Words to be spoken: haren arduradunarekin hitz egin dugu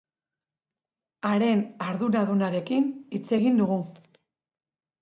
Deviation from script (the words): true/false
false